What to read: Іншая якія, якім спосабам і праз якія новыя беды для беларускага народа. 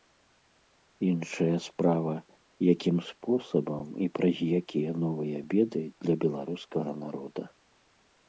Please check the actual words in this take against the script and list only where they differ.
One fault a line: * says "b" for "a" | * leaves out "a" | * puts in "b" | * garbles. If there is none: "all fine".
* says "справа" for "якія"